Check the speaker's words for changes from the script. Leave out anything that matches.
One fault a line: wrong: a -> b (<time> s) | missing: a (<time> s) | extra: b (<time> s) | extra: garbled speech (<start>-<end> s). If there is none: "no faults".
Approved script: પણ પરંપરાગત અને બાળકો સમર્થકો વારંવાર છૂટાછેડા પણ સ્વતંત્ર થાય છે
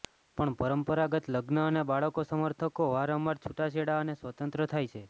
extra: લગ્ન (1.3 s)
wrong: પણ -> અને (4.0 s)